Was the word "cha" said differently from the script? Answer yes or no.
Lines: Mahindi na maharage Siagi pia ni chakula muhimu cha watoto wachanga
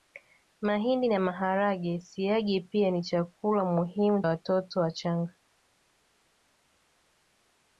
yes